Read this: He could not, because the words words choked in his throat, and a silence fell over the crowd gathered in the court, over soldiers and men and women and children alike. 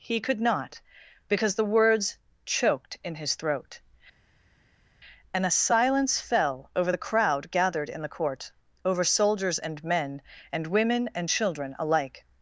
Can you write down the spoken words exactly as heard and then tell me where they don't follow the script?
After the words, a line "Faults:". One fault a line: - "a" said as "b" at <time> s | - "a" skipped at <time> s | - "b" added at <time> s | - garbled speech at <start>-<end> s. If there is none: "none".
He could not, because the words choked in his throat, and a silence fell over the crowd gathered in the court, over soldiers and men and women and children alike.
Faults:
- "words" skipped at 2.2 s